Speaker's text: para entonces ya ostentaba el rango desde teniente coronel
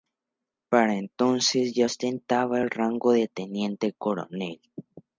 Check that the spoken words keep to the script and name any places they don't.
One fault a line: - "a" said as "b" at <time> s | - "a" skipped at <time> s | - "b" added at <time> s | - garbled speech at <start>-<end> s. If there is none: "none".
- "desde" said as "de" at 3.1 s